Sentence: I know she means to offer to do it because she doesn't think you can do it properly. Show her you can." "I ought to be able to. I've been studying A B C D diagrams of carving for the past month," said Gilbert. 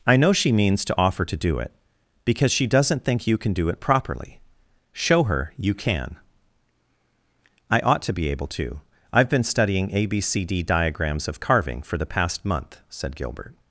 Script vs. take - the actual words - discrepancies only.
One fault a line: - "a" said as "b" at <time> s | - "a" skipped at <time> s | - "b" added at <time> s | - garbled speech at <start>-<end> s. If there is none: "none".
none